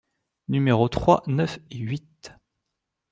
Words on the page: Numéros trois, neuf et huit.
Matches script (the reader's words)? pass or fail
pass